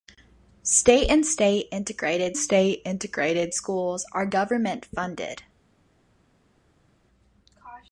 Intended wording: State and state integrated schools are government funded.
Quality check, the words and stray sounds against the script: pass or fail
fail